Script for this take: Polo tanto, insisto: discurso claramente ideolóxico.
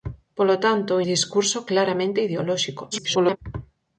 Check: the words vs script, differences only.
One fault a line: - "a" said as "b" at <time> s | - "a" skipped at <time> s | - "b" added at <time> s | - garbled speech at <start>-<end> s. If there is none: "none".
- "insisto" skipped at 0.9 s
- garbled speech at 2.9-3.4 s